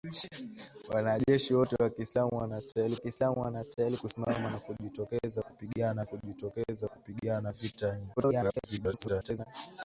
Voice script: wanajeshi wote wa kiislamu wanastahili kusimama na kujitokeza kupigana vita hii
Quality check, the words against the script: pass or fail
fail